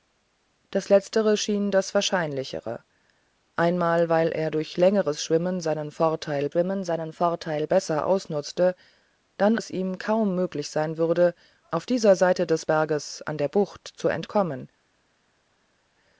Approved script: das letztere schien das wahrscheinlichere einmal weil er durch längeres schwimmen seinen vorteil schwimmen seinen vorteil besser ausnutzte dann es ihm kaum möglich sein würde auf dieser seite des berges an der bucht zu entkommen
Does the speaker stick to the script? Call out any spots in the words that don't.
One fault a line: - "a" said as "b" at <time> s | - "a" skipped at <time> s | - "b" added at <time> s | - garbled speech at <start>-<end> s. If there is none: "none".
none